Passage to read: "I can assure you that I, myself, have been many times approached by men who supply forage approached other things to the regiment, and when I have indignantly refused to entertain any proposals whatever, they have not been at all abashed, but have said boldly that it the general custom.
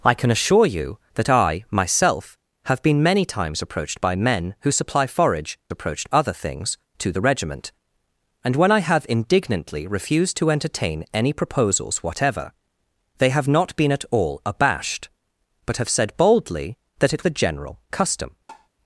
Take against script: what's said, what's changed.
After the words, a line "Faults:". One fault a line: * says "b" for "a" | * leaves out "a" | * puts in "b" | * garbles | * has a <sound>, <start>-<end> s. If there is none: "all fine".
"I can assure you that I, myself, have been many times approached by men who supply forage approached other things to the regiment, and when I have indignantly refused to entertain any proposals whatever, they have not been at all abashed, but have said boldly that it the general custom.
Faults:
* has a tap, 18.5-18.7 s